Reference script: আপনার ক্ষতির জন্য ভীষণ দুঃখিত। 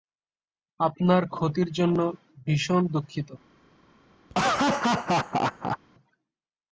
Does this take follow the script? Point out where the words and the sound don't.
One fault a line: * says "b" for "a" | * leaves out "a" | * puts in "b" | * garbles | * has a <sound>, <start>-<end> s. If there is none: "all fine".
* has a laugh, 4.3-5.8 s